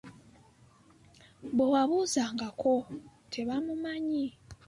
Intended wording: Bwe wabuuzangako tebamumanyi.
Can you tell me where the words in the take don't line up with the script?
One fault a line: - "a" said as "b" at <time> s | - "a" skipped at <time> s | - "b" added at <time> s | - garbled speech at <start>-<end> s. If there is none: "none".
none